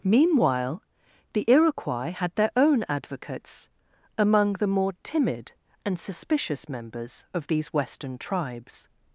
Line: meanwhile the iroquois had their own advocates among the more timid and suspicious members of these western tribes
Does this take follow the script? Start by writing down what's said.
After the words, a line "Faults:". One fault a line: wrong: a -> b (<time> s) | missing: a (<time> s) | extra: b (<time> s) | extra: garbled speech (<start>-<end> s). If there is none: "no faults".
meanwhile the iroquois had their own advocates among the more timid and suspicious members of these western tribes
Faults:
no faults